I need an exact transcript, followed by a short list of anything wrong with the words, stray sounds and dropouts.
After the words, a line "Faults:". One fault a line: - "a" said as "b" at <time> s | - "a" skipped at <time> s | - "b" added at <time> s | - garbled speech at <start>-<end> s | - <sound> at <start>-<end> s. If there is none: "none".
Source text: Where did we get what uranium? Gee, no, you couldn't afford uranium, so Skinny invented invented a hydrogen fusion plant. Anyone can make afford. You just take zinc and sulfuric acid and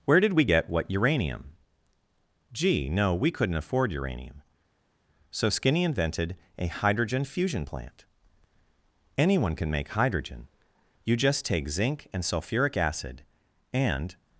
Where did we get what uranium? Gee, no, we couldn't afford uranium, so Skinny invented a hydrogen fusion plant. Anyone can make hydrogen. You just take zinc and sulfuric acid and
Faults:
- "you" said as "we" at 3.1 s
- "invented" skipped at 6.3 s
- "afford" said as "hydrogen" at 9.9 s